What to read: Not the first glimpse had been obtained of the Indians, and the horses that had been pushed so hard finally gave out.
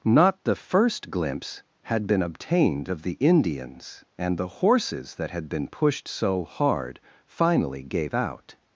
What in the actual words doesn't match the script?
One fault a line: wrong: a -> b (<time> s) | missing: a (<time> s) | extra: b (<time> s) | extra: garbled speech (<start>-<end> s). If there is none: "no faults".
no faults